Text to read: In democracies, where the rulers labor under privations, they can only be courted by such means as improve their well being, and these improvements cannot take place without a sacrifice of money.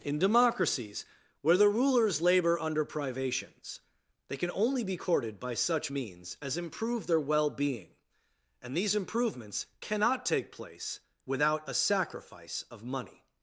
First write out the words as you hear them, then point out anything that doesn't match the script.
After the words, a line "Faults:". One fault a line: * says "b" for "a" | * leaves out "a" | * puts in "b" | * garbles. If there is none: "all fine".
In democracies, where the rulers labor under privations, they can only be courted by such means as improve their well being, and these improvements cannot take place without a sacrifice of money.
Faults:
all fine